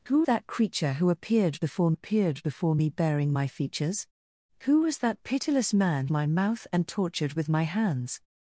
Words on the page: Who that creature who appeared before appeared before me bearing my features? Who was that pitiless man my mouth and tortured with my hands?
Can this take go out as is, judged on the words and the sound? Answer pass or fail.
pass